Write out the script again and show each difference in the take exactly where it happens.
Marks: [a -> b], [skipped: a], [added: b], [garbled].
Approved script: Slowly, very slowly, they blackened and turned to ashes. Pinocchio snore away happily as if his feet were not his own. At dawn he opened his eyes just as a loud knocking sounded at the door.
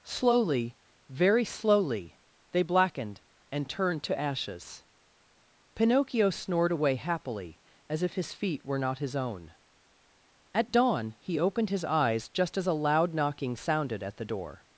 Slowly, very slowly, they blackened and turned to ashes. Pinocchio [snore -> snored] away happily as if his feet were not his own. At dawn he opened his eyes just as a loud knocking sounded at the door.